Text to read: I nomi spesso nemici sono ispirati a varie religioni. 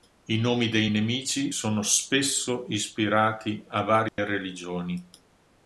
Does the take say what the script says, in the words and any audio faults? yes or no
no